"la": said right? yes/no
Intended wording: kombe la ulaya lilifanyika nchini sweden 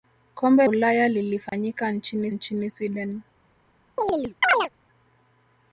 no